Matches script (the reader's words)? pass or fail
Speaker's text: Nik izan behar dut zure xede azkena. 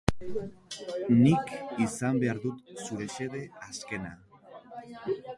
pass